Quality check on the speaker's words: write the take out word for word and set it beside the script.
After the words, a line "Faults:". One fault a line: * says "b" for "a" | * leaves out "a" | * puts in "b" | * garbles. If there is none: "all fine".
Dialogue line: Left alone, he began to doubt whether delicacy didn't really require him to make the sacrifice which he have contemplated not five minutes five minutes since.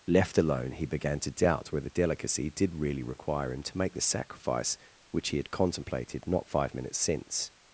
Left alone, he began to doubt whether delicacy did really require him to make the sacrifice which he had contemplated not five minutes since.
Faults:
* says "did" for "didn't"
* says "had" for "have"
* leaves out "five minutes"